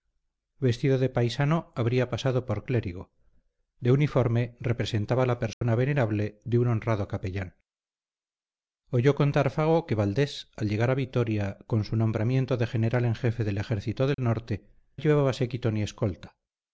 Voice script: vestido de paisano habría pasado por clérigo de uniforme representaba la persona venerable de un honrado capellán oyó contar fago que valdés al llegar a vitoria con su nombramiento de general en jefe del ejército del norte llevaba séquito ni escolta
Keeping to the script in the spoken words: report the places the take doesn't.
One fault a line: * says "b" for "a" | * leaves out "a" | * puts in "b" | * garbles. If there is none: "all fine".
all fine